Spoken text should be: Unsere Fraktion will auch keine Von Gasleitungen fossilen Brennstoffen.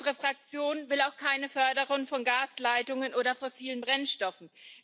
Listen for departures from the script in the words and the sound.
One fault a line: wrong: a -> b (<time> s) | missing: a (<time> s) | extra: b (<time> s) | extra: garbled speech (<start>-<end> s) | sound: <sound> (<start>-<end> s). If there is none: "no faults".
extra: Förderung (1.5 s)
extra: oder (3.1 s)